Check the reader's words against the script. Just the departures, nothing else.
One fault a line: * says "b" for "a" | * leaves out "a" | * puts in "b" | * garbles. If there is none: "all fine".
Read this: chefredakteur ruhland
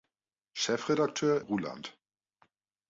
all fine